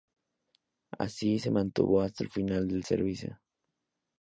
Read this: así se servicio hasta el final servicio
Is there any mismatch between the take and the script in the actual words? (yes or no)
yes